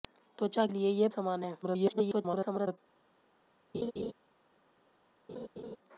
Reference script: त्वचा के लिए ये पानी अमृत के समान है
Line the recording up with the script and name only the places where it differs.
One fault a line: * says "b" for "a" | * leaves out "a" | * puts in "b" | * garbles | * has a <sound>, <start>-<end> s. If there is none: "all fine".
* leaves out "के"
* leaves out "पानी अमृत के"
* garbles
* has a laugh, 3.7-4.1 s
* has a laugh, 5.3-5.8 s